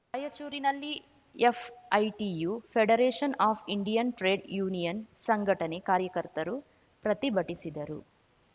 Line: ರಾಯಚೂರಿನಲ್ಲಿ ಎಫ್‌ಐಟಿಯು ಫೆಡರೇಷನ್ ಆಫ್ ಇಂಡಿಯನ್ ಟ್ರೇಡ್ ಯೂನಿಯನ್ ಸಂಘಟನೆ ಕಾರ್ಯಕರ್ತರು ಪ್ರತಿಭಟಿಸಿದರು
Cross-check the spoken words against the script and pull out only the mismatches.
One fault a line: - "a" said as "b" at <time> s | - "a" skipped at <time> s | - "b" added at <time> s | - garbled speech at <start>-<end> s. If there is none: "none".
none